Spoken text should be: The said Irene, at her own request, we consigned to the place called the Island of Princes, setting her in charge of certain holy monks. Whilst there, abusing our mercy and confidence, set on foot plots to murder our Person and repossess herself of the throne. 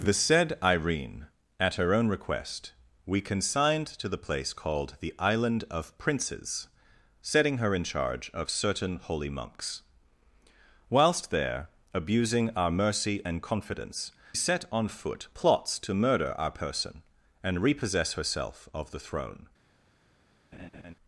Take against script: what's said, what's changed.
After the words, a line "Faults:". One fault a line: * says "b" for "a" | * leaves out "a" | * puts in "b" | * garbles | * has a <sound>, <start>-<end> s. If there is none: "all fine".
The said Irene, at her own request, we consigned to the place called the Island of Princes, setting her in charge of certain holy monks. Whilst there, abusing our mercy and confidence, set on foot plots to murder our Person and repossess herself of the throne.
Faults:
* has a laugh, 20.5-20.9 s